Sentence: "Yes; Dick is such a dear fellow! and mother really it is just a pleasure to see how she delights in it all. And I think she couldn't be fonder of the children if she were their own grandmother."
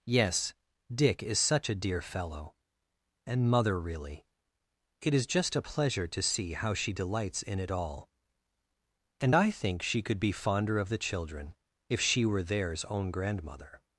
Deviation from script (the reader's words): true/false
true